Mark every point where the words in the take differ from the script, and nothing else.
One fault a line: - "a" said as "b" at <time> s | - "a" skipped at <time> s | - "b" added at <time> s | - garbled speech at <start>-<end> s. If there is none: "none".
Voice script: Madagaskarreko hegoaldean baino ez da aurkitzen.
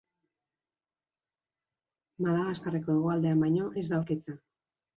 none